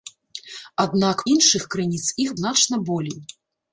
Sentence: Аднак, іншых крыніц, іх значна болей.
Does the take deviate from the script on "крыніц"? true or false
false